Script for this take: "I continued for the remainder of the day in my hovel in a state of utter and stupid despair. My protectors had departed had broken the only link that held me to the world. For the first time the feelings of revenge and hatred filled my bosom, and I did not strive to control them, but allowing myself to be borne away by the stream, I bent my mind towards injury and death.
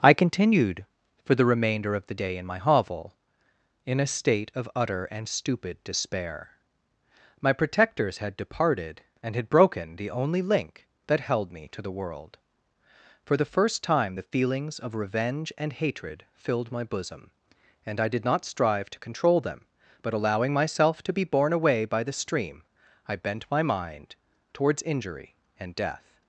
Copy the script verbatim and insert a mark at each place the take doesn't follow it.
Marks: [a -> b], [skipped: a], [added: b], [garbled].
"I continued for the remainder of the day in my hovel in a state of utter and stupid despair. My protectors had departed [added: and] had broken the only link that held me to the world. For the first time the feelings of revenge and hatred filled my bosom, and I did not strive to control them, but allowing myself to be borne away by the stream, I bent my mind towards injury and death.